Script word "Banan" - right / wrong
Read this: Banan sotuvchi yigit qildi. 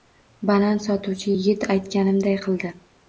right